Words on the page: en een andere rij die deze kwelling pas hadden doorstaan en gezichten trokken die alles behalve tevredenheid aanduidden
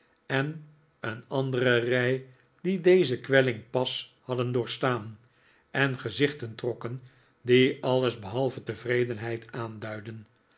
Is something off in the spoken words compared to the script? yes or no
no